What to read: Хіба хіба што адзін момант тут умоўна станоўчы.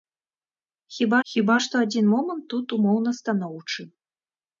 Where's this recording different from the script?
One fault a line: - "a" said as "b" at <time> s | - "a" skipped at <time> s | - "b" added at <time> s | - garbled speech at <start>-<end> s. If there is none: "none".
none